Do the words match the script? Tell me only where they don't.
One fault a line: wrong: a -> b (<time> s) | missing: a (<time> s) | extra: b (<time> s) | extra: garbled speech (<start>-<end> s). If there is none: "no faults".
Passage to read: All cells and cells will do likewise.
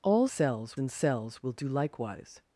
no faults